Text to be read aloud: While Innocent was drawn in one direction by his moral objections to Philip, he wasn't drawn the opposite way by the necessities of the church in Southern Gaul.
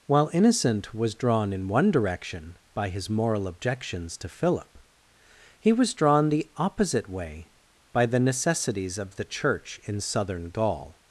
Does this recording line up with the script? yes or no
no